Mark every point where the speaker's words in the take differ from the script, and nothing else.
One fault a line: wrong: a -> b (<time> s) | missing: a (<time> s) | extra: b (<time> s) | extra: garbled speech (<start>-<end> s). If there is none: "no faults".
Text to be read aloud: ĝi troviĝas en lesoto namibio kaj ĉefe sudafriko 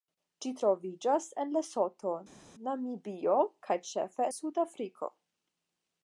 no faults